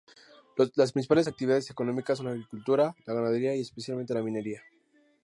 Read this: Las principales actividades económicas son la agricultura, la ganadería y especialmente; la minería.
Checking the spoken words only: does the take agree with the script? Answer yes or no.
yes